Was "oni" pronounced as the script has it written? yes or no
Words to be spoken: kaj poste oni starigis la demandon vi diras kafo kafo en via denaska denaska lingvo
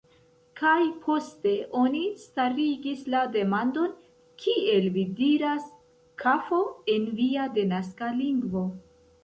yes